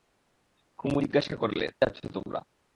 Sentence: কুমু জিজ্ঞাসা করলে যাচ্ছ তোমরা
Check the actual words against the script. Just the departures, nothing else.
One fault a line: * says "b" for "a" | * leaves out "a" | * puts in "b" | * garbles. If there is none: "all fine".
all fine